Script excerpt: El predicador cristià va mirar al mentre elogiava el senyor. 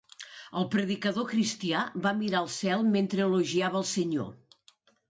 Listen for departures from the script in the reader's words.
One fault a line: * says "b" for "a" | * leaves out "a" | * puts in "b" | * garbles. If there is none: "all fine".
* puts in "cel"